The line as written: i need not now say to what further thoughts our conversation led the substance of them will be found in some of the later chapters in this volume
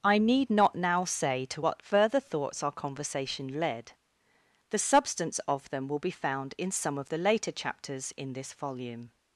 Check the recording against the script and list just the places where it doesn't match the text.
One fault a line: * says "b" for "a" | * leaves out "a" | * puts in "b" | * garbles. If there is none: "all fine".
all fine